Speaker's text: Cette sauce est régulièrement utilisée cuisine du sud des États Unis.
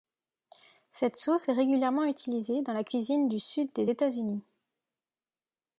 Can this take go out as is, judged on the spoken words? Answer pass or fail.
fail